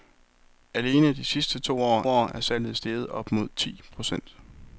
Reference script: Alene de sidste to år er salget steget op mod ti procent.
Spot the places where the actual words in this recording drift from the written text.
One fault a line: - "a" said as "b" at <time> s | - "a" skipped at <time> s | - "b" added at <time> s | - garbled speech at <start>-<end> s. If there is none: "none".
- "år" added at 2.1 s